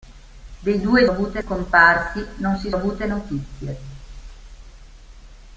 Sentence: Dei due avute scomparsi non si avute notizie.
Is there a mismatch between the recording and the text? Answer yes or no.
no